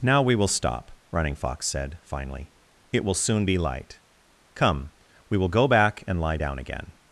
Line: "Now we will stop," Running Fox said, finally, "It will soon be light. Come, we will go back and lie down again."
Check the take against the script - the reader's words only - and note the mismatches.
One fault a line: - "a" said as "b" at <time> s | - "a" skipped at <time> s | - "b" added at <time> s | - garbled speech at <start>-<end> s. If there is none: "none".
none